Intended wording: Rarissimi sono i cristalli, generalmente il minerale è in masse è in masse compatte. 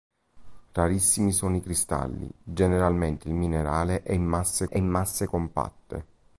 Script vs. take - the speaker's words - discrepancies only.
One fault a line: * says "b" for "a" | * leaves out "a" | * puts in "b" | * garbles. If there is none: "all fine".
all fine